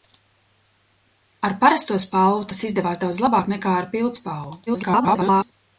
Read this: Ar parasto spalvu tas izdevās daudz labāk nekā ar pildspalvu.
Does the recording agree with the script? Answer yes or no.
no